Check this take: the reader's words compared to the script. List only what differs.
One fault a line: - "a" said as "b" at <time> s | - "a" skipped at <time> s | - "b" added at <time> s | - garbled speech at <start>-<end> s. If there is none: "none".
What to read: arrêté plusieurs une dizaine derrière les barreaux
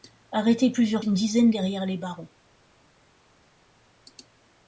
none